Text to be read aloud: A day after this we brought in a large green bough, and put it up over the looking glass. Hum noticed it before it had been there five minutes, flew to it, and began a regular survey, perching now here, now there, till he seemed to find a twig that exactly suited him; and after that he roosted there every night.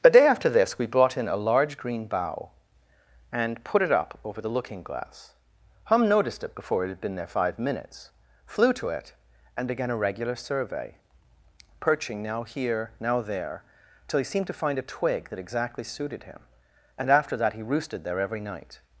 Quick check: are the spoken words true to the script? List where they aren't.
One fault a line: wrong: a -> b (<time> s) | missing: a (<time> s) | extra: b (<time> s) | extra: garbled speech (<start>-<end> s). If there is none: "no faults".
no faults